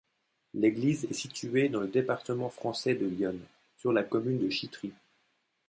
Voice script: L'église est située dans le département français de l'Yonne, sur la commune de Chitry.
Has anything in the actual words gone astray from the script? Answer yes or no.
no